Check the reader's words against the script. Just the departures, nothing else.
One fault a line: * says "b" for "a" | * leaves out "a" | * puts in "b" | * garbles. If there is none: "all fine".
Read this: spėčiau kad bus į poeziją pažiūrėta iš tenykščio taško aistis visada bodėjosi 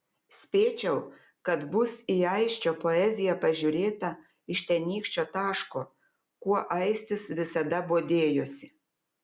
* puts in "aisčio"
* puts in "kuo"